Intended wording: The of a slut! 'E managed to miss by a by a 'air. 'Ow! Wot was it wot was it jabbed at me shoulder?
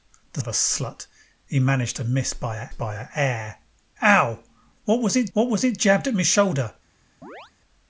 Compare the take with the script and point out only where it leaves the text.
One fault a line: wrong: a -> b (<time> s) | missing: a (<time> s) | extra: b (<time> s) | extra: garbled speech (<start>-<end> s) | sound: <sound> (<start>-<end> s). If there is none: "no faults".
sound: chirp (7.2-7.5 s)